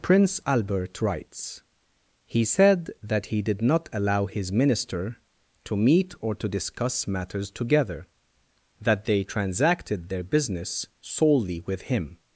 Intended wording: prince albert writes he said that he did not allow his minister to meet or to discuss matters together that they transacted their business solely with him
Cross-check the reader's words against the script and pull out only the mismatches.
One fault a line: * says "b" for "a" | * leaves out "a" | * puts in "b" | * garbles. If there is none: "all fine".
all fine